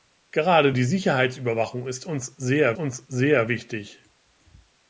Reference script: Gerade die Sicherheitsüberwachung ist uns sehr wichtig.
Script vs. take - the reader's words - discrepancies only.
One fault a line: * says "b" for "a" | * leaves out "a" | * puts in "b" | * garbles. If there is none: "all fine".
* puts in "uns sehr"